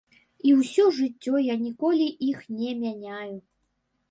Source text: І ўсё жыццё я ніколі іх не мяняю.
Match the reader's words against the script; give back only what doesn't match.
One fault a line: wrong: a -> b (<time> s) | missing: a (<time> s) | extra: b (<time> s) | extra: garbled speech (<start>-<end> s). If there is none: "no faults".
no faults